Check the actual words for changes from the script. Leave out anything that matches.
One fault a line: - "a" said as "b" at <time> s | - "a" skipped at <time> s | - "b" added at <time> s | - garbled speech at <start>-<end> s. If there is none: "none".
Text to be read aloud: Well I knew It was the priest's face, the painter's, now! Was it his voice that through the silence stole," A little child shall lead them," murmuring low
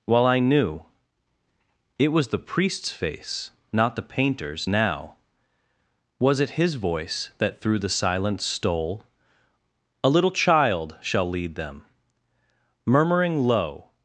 - "not" added at 3.7 s